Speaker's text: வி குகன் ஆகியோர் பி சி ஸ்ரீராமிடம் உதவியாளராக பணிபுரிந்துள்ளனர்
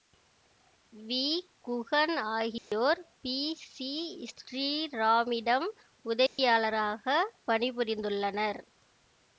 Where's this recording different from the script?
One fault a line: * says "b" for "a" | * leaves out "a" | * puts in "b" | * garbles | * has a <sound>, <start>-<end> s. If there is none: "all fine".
* has a dropout, 2.6-2.7 s
* has a dropout, 6.3-6.4 s